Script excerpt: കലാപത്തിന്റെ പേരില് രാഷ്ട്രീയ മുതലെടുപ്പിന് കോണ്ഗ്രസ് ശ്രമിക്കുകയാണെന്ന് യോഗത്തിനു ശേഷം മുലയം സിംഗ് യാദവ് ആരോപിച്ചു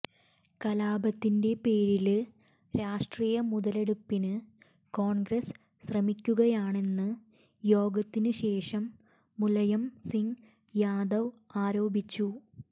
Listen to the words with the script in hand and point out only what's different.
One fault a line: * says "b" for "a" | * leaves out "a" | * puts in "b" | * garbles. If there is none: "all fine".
all fine